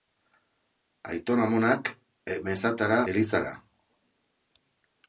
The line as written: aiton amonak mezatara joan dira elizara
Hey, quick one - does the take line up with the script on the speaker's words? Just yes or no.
no